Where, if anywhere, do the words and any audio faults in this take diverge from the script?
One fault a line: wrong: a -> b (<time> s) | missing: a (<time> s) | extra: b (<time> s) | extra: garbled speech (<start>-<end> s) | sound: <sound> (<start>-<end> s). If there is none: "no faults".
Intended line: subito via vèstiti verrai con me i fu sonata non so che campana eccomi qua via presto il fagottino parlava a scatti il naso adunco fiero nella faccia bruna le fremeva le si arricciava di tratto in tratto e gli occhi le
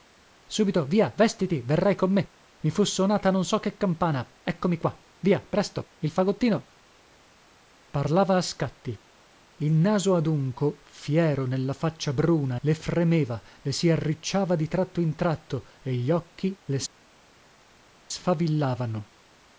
no faults